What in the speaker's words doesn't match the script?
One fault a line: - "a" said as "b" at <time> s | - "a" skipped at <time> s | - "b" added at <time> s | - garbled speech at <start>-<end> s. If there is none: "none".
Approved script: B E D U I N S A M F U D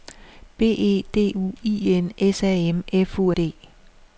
none